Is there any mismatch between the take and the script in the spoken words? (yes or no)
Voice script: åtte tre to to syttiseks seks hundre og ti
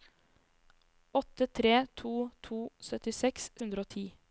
yes